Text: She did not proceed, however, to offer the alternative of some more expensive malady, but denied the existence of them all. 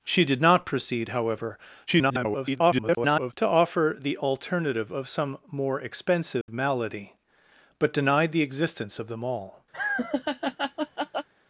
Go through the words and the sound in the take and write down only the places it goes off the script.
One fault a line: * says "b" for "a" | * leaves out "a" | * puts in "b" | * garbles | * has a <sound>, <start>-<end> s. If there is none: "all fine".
* garbles
* has a dropout, 6.4-6.5 s
* has a laugh, 9.7-11.3 s